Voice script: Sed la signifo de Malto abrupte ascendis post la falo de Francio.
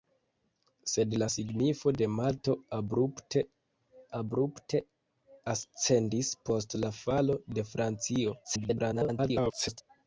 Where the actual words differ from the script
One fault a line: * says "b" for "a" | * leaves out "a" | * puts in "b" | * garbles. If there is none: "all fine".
* puts in "abrupte"
* garbles